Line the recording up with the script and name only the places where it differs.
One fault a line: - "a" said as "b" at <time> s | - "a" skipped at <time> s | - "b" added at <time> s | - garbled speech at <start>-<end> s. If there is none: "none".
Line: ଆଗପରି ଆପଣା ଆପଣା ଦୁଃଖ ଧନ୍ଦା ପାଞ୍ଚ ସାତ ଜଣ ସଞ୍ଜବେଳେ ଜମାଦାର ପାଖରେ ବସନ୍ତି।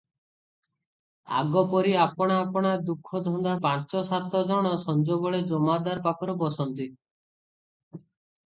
none